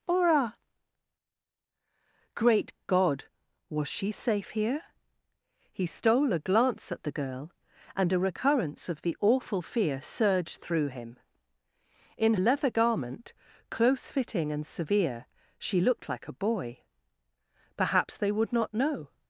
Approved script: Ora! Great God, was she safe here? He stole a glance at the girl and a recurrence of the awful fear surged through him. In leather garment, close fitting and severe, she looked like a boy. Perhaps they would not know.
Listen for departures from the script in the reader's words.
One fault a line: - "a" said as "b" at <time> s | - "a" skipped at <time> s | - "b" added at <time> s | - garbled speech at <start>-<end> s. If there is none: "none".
none